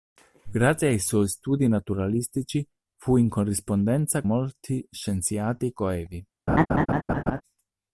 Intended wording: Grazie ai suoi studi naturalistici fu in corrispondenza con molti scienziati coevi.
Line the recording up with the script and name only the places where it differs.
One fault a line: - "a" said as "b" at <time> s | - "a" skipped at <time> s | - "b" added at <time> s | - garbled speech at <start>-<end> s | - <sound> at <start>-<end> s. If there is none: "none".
- "con" skipped at 4.2 s
- laugh at 6.5-7.4 s